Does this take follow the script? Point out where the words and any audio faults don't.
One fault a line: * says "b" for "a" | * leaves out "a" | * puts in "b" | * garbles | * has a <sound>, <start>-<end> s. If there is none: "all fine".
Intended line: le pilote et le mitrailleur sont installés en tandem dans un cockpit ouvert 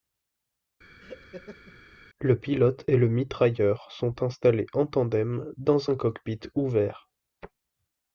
* has a laugh, 1.0-1.8 s